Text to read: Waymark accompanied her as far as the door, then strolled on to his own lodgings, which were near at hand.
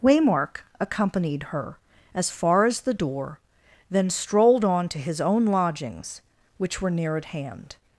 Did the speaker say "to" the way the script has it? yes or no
yes